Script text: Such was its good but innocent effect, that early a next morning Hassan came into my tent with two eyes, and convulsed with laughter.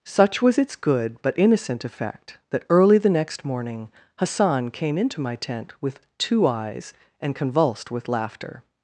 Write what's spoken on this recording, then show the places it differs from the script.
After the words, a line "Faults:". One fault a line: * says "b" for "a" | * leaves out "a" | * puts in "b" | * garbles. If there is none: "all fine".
Such was its good but innocent effect, that early the next morning Hassan came into my tent with two eyes, and convulsed with laughter.
Faults:
* says "the" for "a"